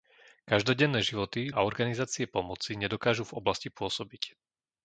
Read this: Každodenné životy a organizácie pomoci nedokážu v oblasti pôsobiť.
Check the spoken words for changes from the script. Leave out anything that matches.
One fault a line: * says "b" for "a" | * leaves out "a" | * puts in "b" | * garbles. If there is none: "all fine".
all fine